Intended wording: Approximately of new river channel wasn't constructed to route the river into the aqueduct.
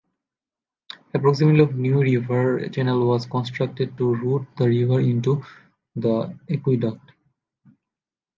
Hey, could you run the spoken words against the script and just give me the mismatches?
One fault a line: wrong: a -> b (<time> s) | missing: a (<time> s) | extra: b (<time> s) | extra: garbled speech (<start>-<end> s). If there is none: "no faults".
wrong: wasn't -> was (3.0 s)